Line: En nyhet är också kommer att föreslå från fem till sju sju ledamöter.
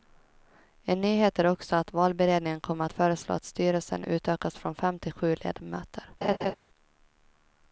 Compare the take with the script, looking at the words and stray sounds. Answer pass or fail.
fail